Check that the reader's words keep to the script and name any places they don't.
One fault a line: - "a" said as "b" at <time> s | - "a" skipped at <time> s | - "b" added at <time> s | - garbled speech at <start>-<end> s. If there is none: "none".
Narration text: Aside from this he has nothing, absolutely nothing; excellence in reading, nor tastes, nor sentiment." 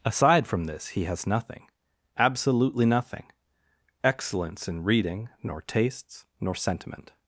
none